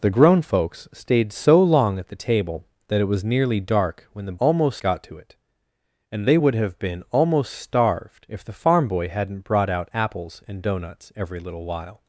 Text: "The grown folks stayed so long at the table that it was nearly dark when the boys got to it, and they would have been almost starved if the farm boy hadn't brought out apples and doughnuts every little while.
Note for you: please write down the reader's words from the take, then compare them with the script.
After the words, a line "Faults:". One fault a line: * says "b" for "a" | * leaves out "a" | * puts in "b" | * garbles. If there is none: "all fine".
"The grown folks stayed so long at the table that it was nearly dark when the almost got to it, and they would have been almost starved if the farm boy hadn't brought out apples and doughnuts every little while.
Faults:
* says "almost" for "boys"